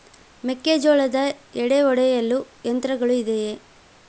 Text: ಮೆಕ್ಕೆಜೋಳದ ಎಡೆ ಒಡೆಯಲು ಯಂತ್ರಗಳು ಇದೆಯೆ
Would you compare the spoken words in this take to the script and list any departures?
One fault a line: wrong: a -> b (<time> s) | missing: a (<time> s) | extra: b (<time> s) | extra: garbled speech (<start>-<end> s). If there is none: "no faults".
no faults